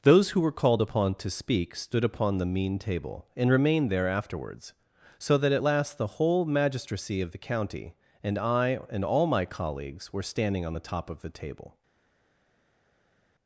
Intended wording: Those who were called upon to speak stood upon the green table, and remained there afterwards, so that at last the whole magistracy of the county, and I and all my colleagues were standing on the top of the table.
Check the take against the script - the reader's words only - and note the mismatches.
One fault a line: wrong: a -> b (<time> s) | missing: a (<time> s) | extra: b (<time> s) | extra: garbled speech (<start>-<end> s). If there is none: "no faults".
wrong: green -> mean (2.4 s)